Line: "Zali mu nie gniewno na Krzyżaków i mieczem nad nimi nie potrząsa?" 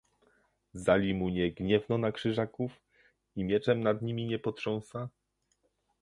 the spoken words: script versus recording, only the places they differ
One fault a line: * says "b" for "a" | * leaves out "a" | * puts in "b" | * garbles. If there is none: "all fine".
all fine